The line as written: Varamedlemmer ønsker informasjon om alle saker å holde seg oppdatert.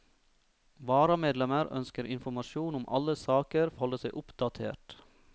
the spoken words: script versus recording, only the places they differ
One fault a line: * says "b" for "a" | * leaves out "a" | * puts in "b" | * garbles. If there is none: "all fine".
all fine